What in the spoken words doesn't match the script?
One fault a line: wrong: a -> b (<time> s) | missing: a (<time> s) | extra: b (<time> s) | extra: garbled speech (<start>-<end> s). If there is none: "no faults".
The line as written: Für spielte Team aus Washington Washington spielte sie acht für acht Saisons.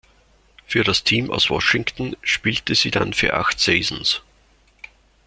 wrong: spielte -> das (0.8 s)
missing: Washington (2.2 s)
wrong: acht -> dann (2.9 s)